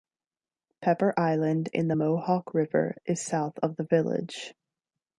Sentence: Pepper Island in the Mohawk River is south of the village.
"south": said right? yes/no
yes